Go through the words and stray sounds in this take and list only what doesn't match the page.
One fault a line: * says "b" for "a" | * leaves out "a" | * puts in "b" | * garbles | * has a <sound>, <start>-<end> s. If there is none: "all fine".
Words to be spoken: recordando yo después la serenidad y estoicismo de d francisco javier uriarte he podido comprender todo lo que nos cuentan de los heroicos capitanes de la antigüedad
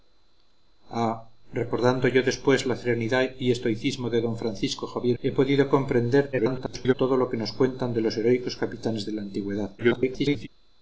* leaves out "uriarte"
* garbles
* garbles